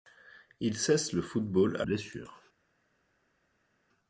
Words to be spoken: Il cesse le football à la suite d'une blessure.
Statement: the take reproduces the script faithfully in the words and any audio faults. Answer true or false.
false